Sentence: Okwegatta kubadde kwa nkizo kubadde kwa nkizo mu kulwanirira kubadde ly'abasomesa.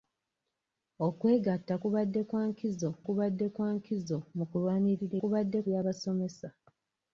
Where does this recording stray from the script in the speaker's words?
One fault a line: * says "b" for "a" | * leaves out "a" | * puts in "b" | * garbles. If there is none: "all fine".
all fine